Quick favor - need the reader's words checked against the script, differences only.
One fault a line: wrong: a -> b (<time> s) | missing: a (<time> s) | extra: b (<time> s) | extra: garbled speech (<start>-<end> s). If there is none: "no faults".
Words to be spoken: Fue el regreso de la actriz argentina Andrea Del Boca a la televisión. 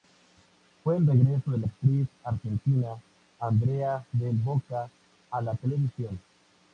no faults